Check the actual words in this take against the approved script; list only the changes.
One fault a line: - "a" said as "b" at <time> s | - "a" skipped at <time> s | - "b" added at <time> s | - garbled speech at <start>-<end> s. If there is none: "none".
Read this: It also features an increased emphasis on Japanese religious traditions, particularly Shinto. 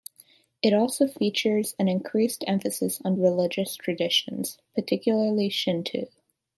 - "Japanese" skipped at 3.2 s